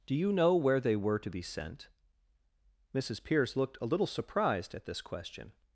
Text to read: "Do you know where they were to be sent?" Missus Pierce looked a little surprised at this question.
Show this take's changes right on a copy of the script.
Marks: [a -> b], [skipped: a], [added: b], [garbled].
"Do you know where they were to be sent?" Missus Pierce looked a little surprised at this question.